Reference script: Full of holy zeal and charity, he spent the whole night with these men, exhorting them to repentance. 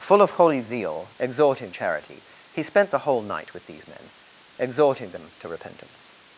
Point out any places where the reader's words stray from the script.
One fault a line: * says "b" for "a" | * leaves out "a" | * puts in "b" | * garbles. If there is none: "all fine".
* says "exhorting" for "and"